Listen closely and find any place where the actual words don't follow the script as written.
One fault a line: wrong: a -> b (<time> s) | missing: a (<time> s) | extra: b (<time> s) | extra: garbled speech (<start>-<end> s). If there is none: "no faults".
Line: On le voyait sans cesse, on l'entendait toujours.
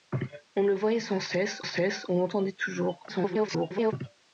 extra: cesse (1.6 s)
extra: garbled speech (3.1-3.9 s)